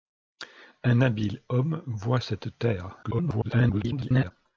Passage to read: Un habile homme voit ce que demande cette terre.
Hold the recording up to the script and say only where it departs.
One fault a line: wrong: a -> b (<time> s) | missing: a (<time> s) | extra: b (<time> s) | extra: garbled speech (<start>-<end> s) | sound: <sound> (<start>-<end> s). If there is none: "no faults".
missing: ce que demande (2.2 s)
extra: garbled speech (3.0-4.3 s)